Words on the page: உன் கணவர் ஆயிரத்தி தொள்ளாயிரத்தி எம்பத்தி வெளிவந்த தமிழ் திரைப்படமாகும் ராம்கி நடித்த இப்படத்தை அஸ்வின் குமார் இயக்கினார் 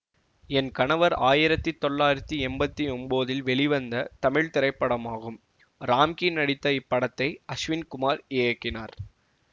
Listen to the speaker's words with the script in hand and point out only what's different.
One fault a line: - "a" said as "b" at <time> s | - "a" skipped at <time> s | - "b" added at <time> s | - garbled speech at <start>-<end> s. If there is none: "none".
- "உன்" said as "என்" at 0.5 s
- "ஒன்போதில்" added at 2.9 s